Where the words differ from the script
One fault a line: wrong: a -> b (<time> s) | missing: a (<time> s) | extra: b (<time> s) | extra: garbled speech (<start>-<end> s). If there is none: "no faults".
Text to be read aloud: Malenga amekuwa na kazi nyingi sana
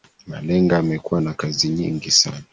no faults